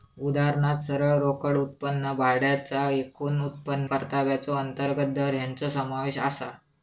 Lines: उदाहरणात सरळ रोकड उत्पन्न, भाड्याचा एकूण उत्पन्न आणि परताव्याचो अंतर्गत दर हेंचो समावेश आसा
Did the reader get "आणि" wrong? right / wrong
wrong